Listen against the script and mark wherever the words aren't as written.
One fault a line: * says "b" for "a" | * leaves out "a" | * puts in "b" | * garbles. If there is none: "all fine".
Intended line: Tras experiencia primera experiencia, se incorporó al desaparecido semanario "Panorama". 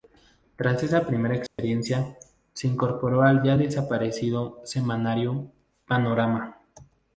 * says "esa" for "experiencia"
* puts in "ya"